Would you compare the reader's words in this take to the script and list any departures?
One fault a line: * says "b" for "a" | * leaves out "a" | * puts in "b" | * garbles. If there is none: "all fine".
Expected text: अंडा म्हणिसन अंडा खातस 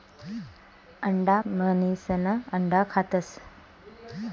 all fine